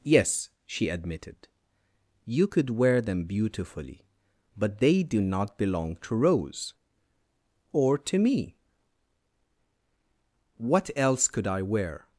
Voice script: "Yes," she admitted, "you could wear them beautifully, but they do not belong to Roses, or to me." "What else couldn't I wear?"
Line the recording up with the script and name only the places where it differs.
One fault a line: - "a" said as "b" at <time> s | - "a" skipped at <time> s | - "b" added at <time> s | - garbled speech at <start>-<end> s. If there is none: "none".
- "Roses" said as "Rose" at 6.2 s
- "couldn't" said as "could" at 11.3 s